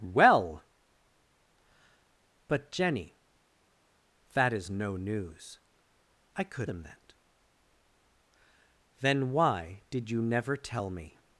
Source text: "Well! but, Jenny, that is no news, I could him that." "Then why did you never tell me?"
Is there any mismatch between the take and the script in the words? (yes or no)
no